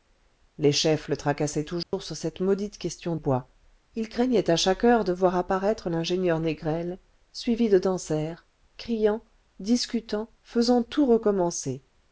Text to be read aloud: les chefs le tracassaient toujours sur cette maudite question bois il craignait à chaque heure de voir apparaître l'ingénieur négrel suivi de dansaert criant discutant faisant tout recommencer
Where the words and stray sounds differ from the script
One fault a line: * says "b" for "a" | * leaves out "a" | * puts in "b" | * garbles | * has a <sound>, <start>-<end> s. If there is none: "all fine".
* has a dropout, 1.8-1.9 s